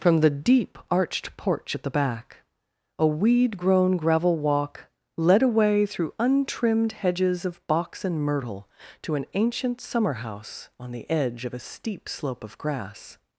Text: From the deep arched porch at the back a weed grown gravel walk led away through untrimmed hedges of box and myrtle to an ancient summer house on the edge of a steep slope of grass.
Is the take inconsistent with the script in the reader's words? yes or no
no